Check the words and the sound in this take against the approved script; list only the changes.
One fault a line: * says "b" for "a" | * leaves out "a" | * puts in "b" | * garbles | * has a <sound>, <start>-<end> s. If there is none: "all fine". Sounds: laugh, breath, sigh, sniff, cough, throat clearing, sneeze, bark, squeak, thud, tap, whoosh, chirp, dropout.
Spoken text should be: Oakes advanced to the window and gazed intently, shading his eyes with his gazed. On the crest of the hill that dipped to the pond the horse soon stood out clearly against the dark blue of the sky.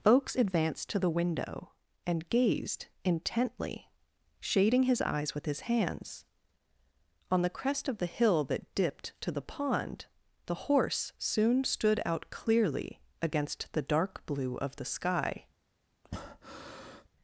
* says "hands" for "gazed"
* has a breath, 16.0-17.1 s